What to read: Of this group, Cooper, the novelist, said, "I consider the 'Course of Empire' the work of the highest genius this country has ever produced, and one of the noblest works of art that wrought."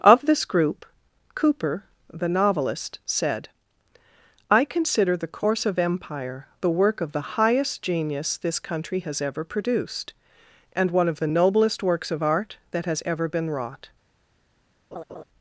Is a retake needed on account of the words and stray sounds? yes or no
yes